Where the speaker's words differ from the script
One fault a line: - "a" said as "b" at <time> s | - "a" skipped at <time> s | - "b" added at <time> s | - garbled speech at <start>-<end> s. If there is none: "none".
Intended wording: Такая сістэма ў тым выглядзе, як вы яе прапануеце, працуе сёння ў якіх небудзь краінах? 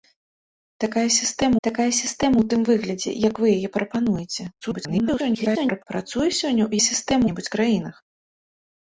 - "такая сістэма" added at 1.7 s
- garbled speech at 4.6-5.8 s
- "якіх" said as "сістэма" at 6.8 s